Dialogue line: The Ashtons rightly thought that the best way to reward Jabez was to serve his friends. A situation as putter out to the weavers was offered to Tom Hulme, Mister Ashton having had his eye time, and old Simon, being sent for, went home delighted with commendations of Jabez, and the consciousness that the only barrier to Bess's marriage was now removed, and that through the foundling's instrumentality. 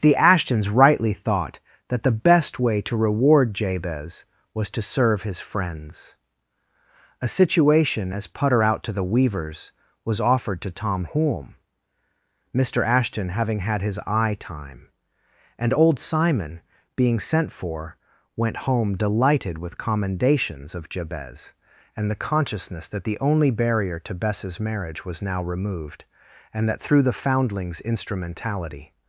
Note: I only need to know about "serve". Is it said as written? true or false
true